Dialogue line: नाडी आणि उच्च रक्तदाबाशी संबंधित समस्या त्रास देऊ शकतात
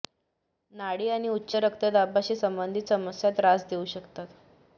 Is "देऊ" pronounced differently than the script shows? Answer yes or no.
no